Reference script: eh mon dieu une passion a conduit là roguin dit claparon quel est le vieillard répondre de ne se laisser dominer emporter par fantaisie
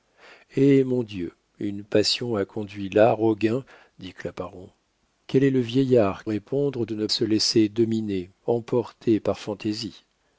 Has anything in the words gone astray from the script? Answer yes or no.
no